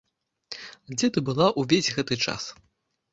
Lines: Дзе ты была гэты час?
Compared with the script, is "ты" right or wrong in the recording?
right